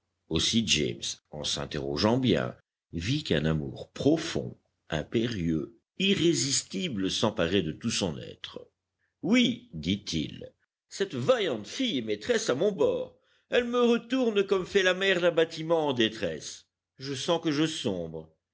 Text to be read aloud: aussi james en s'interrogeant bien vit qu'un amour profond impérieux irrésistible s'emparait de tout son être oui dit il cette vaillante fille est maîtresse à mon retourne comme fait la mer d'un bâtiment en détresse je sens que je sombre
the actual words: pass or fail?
fail